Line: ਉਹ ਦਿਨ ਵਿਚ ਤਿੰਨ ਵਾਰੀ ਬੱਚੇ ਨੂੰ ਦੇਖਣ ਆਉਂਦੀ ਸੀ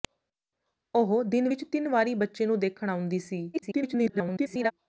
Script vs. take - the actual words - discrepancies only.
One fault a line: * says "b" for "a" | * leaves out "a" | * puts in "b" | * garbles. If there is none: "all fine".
* garbles